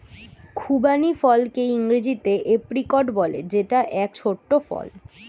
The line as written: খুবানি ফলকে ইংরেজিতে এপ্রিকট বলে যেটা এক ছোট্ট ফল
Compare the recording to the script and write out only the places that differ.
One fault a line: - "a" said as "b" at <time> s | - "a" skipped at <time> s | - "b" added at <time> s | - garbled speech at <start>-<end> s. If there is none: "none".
none